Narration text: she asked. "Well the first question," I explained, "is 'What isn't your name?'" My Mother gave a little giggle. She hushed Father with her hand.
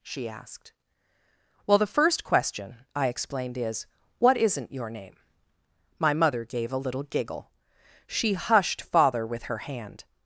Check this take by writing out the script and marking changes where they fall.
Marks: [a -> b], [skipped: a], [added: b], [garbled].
she asked. "Well the first question," I explained, "is 'What isn't your name?'" My Mother gave a little giggle. She hushed Father with her hand.